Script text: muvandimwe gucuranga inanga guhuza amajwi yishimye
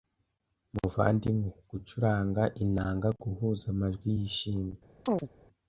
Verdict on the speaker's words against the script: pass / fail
pass